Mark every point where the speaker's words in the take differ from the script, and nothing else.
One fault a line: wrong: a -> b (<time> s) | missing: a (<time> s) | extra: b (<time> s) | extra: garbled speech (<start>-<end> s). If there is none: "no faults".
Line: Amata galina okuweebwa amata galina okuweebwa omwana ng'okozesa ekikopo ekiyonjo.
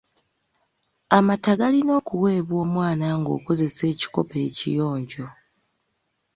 missing: amata galina okuweebwa (2.6 s)